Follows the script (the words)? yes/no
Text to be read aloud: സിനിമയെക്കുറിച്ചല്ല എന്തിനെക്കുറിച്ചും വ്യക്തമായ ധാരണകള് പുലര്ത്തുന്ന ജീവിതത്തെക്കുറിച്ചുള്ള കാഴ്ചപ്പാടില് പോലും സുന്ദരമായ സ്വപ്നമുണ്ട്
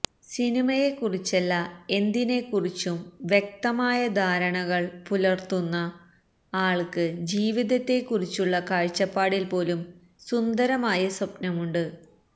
no